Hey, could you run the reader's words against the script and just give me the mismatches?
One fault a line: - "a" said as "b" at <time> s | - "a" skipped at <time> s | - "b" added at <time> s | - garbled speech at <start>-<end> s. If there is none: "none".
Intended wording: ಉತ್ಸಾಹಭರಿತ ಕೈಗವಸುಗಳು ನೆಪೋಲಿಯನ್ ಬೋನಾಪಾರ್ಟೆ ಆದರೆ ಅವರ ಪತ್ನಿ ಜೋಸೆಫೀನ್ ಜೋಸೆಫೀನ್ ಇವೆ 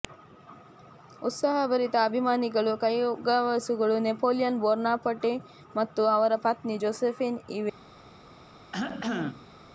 - "ಅಭಿಮಾನಿಗಳು" added at 2.0 s
- "ಆದರೆ" said as "ಮತ್ತು" at 5.8 s
- "ಜೋಸೆಫೀನ್" skipped at 7.4 s